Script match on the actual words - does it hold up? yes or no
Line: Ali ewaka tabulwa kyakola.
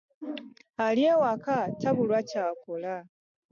yes